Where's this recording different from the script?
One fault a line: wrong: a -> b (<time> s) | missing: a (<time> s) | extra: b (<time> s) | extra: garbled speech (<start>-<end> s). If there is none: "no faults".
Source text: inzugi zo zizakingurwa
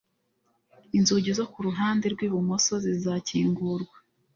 extra: kuruhande rwibumoso (1.5 s)